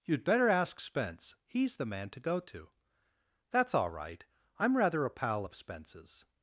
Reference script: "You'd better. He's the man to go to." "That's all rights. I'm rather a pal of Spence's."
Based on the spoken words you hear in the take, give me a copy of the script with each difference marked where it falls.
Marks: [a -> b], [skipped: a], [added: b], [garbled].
"You'd better. [added: ask Spence] He's the man to go to." "That's all [rights. -> right] I'm rather a pal of Spence's."